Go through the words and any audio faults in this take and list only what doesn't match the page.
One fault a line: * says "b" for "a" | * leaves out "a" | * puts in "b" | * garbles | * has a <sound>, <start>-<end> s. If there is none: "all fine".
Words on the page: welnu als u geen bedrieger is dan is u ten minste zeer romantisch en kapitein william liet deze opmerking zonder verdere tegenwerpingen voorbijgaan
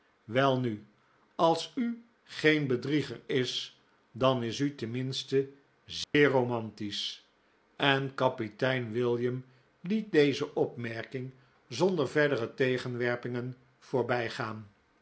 * has a dropout, 6.0-6.1 s